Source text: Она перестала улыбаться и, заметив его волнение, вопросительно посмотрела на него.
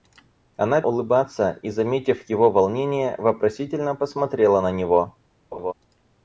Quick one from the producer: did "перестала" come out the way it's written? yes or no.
no